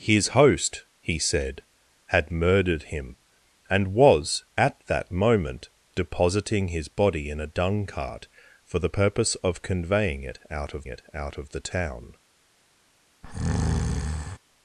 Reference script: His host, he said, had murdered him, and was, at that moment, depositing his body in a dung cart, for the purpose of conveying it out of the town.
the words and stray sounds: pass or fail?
fail